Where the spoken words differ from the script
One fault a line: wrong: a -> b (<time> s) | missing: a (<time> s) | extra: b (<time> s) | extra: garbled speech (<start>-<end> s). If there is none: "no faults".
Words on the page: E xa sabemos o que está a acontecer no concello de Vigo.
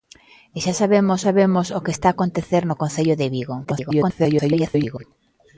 extra: sabemos (1.3 s)
extra: garbled speech (3.6-5.0 s)